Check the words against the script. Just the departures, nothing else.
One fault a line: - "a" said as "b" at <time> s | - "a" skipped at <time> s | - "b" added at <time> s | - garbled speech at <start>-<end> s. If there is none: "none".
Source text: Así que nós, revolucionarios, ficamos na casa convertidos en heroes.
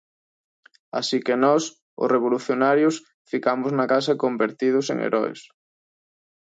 - "os" added at 2.0 s